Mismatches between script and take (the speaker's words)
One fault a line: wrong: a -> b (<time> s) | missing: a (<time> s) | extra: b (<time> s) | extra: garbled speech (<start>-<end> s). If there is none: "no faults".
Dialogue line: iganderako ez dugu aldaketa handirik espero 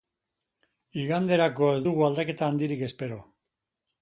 no faults